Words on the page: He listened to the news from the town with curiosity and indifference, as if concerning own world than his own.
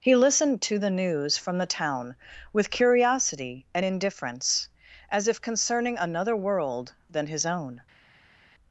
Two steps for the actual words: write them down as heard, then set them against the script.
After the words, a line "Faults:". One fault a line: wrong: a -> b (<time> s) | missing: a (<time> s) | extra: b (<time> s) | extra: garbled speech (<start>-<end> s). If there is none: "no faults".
He listened to the news from the town with curiosity and indifference, as if concerning another world than his own.
Faults:
wrong: own -> another (6.0 s)